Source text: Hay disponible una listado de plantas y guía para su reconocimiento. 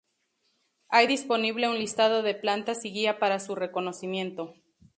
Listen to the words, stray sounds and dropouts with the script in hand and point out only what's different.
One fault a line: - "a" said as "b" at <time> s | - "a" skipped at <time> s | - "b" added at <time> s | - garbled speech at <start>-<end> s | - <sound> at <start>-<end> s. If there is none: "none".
- "una" said as "un" at 1.7 s